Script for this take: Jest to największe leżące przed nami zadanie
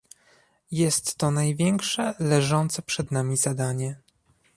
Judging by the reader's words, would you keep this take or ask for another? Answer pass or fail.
pass